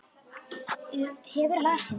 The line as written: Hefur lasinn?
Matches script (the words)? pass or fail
pass